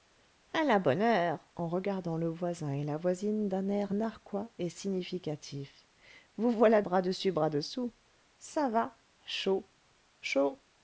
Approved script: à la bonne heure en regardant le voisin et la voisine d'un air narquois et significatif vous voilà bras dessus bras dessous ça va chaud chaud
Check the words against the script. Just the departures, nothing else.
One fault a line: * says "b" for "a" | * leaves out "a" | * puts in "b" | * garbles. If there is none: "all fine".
all fine